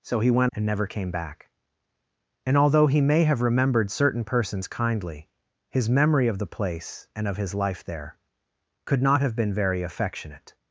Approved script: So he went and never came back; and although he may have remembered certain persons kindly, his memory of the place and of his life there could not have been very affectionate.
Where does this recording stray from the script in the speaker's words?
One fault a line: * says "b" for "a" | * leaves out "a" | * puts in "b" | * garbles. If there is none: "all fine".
all fine